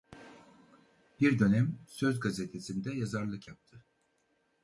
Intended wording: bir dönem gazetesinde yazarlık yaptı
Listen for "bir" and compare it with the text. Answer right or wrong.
right